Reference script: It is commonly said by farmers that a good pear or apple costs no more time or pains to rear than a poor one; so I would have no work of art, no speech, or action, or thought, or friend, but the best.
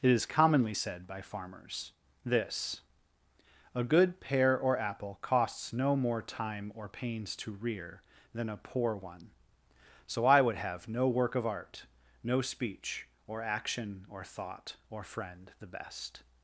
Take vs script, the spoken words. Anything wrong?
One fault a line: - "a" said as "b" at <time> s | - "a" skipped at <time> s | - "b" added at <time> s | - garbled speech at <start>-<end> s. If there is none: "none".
- "that" said as "this" at 2.2 s
- "but" skipped at 15.5 s